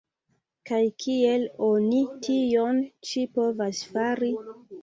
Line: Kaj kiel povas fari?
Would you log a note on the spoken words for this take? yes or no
yes